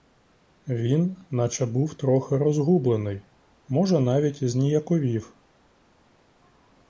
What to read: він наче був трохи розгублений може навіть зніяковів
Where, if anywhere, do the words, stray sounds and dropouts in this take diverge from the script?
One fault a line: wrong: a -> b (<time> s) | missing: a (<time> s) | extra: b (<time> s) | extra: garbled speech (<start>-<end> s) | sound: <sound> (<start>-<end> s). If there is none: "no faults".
no faults